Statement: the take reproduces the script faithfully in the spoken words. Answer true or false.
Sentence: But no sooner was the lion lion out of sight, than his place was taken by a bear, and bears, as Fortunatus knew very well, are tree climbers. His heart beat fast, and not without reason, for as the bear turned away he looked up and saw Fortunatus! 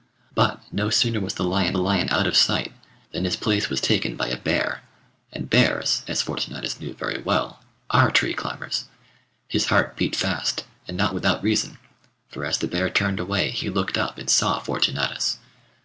true